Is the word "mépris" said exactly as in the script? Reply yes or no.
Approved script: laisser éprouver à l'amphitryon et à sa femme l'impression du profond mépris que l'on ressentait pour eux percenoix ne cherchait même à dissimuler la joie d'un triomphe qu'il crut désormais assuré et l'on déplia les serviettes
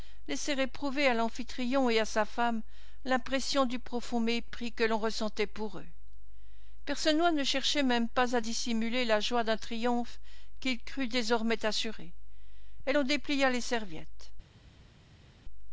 yes